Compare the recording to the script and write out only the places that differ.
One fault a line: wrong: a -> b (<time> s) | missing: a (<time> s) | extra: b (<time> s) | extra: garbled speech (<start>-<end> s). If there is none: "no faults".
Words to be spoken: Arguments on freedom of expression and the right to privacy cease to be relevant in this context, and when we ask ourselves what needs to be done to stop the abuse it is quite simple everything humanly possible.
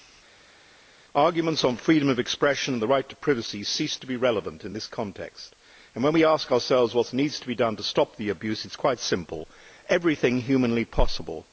no faults